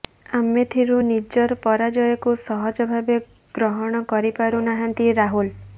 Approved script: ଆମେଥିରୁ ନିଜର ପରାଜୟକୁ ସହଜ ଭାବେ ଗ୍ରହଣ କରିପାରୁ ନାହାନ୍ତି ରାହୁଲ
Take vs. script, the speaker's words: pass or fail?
pass